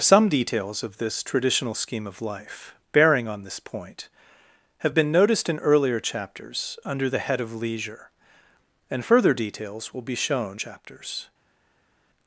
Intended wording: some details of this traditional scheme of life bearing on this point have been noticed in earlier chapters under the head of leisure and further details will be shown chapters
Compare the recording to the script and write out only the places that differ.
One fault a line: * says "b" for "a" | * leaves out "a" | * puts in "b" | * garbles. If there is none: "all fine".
all fine